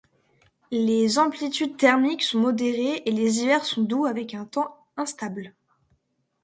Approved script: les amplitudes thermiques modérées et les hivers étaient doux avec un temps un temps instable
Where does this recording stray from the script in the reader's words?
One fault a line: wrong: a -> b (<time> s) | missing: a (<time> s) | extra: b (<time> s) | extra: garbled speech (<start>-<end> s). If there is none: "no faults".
extra: sont (2.2 s)
wrong: étaient -> sont (3.7 s)
missing: un temps (4.9 s)